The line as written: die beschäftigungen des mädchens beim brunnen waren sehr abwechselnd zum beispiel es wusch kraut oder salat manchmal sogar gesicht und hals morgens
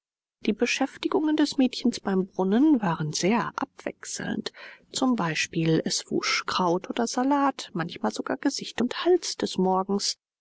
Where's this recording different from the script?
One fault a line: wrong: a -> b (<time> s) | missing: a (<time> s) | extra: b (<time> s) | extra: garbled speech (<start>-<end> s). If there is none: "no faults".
extra: des (9.4 s)